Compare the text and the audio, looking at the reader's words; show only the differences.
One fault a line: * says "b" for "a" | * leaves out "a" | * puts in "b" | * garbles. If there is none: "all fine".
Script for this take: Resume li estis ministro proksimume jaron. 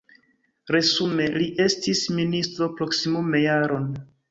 all fine